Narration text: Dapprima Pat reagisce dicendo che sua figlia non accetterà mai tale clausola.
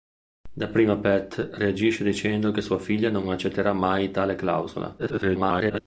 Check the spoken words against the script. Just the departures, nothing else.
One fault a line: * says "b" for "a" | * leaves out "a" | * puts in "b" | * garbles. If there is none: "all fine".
* garbles